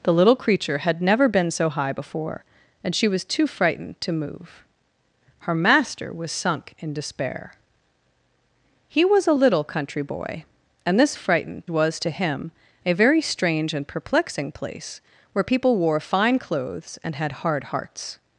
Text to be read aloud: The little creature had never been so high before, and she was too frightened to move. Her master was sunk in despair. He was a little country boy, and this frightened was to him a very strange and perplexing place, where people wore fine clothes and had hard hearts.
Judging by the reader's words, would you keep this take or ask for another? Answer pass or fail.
pass